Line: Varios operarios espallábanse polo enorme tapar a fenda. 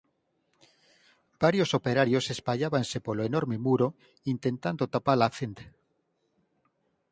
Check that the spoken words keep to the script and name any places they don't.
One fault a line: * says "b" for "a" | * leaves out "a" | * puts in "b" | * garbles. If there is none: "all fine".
* puts in "muro intentando"